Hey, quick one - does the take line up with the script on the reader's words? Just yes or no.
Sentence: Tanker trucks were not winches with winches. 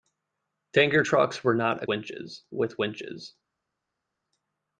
yes